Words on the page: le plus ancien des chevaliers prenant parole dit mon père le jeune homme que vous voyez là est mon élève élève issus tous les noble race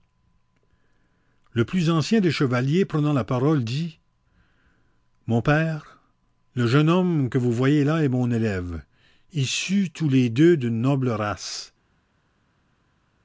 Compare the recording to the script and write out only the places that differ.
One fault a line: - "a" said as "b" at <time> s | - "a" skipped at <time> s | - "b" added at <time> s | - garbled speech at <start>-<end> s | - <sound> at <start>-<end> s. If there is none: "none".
- "la" added at 3.1 s
- "élève" skipped at 8.8 s
- "deux d'une" added at 10.3 s